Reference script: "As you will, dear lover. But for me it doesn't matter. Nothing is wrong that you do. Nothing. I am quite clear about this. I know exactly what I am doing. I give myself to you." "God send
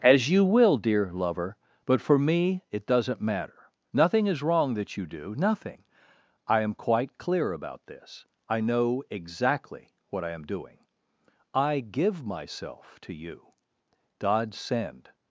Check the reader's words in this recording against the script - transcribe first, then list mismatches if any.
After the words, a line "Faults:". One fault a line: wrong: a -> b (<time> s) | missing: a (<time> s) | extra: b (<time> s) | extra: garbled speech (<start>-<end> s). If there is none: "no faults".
"As you will, dear lover. But for me it doesn't matter. Nothing is wrong that you do. Nothing. I am quite clear about this. I know exactly what I am doing. I give myself to you." "God send
Faults:
no faults